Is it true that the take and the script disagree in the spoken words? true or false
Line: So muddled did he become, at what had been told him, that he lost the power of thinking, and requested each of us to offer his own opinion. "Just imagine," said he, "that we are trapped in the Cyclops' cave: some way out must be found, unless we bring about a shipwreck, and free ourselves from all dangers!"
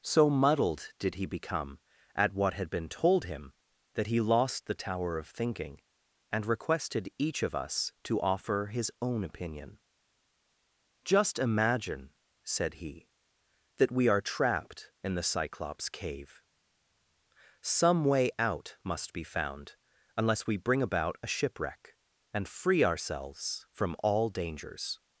true